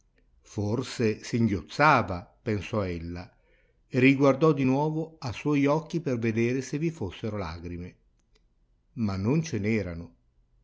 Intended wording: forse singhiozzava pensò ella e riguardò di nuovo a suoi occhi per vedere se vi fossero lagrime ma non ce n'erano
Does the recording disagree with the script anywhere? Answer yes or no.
no